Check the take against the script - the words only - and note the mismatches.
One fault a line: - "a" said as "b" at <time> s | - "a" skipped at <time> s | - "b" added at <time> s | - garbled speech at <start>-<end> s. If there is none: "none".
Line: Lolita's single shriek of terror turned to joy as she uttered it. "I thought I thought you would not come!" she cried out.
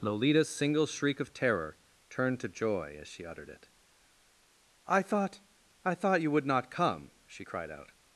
none